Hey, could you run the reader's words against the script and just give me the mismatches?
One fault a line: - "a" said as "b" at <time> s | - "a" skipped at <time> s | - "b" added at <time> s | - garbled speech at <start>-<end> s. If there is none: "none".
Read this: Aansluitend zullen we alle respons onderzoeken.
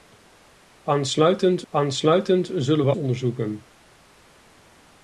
- "aansluitend" added at 1.7 s
- "alle respons" skipped at 2.9 s